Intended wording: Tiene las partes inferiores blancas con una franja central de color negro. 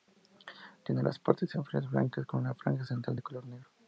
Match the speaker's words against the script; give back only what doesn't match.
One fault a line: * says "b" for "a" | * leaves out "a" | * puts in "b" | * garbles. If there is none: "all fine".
all fine